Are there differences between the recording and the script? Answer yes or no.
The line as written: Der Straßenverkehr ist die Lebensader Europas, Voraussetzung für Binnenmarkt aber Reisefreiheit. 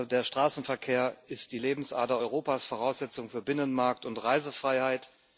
yes